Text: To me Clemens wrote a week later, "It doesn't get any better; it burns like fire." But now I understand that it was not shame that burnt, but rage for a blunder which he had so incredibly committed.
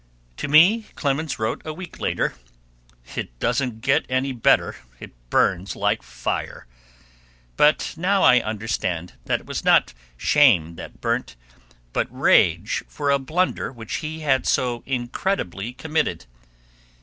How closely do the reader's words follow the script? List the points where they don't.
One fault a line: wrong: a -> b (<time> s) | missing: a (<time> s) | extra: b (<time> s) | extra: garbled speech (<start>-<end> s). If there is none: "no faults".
no faults